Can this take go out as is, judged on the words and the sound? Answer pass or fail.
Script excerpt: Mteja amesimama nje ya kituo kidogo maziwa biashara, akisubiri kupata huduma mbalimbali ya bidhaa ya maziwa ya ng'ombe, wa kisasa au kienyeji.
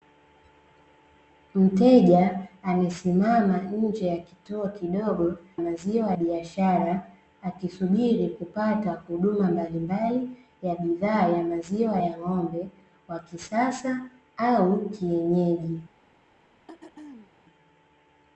fail